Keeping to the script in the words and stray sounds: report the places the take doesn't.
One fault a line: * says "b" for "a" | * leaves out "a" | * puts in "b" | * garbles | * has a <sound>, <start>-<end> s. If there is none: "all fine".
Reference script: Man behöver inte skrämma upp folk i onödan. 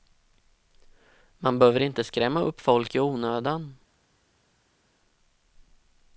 all fine